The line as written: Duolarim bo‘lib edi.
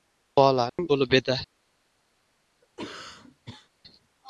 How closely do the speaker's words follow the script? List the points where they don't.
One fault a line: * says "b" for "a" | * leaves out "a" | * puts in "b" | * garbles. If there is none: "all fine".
all fine